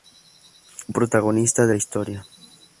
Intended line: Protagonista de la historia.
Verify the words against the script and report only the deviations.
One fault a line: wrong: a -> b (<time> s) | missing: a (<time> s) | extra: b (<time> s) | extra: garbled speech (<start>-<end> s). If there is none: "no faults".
no faults